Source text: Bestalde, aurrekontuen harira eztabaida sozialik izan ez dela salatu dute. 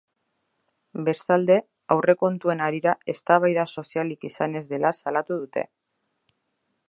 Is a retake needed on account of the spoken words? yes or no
no